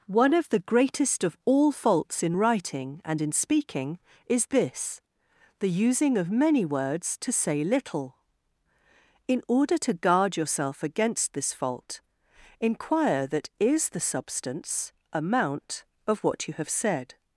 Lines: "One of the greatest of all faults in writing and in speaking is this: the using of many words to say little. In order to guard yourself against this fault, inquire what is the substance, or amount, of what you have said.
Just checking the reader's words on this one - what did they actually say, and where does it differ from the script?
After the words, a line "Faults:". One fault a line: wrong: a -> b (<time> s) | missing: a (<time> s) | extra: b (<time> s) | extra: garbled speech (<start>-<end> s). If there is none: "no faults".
"One of the greatest of all faults in writing and in speaking is this: the using of many words to say little. In order to guard yourself against this fault, inquire that is the substance, amount, of what you have said.
Faults:
wrong: what -> that (13.3 s)
missing: or (14.9 s)